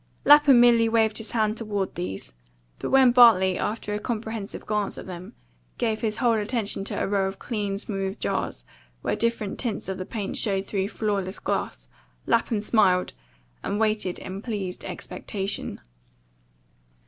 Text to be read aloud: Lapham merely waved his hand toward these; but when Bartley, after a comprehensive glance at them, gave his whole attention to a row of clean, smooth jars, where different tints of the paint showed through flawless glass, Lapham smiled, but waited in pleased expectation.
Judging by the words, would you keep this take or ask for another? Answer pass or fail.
fail